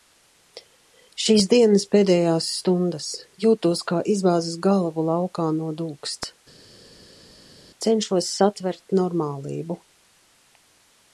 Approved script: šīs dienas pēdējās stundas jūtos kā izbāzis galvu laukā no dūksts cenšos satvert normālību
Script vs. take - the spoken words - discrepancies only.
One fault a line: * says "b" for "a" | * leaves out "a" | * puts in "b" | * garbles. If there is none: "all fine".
all fine